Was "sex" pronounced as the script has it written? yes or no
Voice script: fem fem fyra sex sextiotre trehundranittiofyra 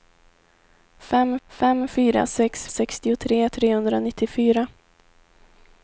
yes